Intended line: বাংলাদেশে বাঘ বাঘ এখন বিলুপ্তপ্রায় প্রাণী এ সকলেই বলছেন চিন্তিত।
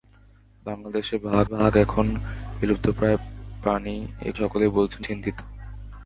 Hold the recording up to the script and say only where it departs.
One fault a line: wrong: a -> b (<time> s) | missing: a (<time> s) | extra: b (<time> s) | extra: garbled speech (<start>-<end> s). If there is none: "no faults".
no faults